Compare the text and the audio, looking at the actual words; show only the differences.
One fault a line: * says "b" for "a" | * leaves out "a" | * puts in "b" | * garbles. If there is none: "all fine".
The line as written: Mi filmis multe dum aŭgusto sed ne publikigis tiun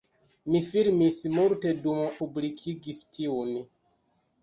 * leaves out "aŭgusto sed ne"